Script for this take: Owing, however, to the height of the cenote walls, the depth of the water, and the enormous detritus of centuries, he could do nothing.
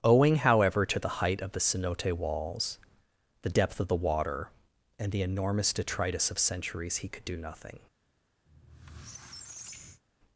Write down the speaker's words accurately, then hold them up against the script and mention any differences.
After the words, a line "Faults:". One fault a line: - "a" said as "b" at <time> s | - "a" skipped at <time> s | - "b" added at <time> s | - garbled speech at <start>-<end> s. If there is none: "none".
Owing, however, to the height of the cenote walls, the depth of the water, and the enormous detritus of centuries, he could do nothing.
Faults:
none